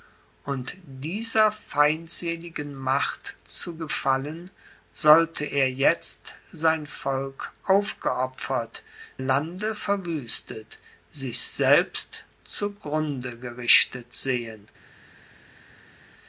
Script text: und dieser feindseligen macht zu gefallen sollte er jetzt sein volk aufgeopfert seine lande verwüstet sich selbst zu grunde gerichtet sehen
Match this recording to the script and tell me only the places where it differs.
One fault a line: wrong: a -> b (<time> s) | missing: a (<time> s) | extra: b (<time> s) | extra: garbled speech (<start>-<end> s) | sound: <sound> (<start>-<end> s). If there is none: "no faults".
missing: seine (8.8 s)